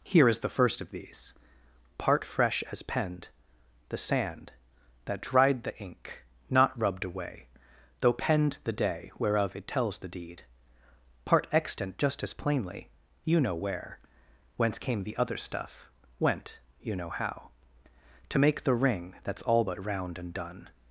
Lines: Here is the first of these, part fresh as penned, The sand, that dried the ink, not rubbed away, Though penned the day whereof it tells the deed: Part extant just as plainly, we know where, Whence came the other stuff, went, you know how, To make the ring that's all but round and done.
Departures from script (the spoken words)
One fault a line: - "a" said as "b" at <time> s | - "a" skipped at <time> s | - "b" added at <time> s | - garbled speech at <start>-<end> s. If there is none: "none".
- "we" said as "you" at 13.2 s